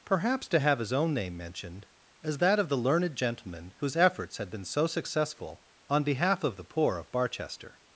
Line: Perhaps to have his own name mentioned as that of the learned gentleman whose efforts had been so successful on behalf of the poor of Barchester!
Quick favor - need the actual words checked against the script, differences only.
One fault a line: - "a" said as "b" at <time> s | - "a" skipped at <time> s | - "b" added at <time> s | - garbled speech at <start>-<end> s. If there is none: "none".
none